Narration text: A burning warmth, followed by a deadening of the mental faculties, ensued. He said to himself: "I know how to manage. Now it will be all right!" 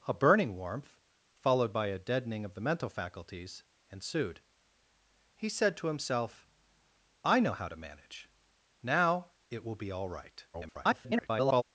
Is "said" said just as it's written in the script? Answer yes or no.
yes